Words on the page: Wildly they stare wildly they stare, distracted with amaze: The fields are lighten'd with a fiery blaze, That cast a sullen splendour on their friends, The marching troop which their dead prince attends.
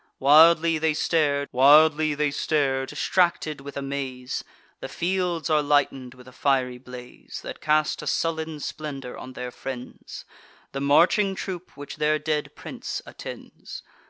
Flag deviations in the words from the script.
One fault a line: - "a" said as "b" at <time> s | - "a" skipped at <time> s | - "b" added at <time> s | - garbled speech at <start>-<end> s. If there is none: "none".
none